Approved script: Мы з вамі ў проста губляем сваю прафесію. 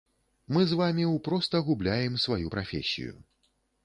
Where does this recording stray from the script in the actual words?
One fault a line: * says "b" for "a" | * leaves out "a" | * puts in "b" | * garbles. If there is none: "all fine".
all fine